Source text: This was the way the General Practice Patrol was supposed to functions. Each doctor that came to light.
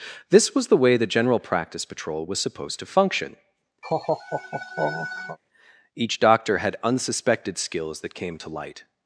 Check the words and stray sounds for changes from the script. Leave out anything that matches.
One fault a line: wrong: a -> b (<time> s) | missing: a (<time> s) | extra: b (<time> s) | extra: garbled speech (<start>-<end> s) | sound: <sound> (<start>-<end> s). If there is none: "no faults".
wrong: functions -> function (2.9 s)
sound: laugh (3.8-5.4 s)
extra: had unsuspected skills (6.6 s)